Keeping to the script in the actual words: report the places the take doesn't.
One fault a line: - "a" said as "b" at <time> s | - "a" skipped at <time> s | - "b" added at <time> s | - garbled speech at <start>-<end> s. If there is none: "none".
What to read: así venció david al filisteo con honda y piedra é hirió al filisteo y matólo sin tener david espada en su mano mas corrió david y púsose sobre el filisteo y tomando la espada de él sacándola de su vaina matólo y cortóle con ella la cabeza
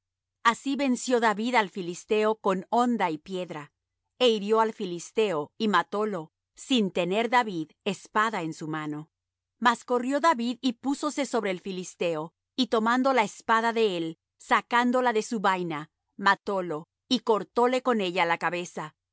none